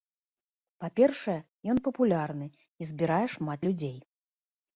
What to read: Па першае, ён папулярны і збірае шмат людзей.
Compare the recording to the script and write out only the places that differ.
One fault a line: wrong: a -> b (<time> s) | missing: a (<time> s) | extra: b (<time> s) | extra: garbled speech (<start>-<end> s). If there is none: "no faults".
no faults